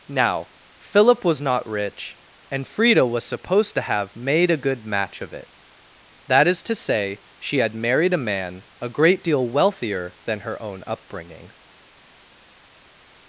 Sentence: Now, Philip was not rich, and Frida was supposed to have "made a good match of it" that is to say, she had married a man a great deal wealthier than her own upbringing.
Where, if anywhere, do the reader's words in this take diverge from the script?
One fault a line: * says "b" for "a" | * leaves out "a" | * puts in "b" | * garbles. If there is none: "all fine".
all fine